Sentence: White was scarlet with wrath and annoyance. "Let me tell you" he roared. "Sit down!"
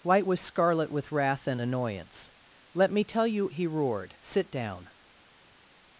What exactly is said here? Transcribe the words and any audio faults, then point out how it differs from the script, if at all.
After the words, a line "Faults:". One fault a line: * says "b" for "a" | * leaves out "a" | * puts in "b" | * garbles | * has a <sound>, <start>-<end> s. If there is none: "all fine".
White was scarlet with wrath and annoyance. "Let me tell you" he roared. "Sit down!"
Faults:
all fine